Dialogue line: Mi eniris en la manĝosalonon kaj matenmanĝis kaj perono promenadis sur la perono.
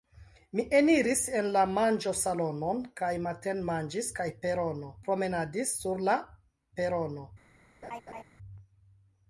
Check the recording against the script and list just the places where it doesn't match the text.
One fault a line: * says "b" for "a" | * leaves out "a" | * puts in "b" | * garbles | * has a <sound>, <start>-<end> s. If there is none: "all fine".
* has a laugh, 7.8-8.2 s